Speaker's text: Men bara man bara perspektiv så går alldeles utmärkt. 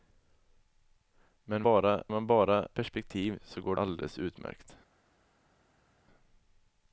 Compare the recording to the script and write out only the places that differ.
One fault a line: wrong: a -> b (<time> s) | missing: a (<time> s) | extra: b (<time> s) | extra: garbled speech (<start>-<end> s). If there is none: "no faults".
no faults